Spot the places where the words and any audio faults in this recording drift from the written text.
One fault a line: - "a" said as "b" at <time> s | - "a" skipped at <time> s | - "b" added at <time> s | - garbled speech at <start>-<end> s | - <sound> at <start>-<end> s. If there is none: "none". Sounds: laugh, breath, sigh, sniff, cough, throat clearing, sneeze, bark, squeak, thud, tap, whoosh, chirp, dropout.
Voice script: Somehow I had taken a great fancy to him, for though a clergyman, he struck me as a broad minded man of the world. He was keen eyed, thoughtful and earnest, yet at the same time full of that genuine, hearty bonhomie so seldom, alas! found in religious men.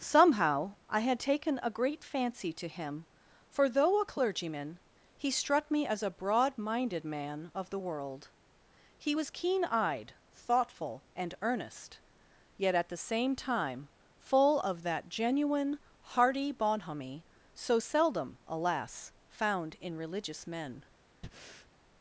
- breath at 21.2-21.7 s